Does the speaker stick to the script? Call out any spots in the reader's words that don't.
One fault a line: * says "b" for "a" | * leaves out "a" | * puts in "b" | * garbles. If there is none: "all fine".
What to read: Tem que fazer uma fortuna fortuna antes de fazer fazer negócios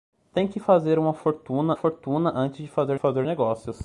all fine